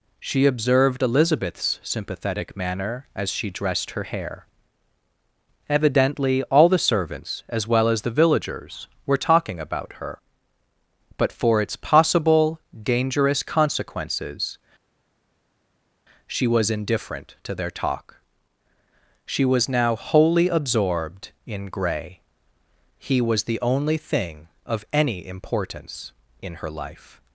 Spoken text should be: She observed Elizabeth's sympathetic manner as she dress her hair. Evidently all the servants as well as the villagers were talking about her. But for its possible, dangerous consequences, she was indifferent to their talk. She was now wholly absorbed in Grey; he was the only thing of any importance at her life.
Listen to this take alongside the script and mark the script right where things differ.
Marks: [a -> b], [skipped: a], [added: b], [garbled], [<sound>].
She observed Elizabeth's sympathetic manner as she [dress -> dressed] her hair. Evidently all the servants as well as the villagers were talking about her. But for its possible, dangerous consequences, she was indifferent to their talk. She was now wholly absorbed in Grey; he was the only thing of any importance [at -> in] her life.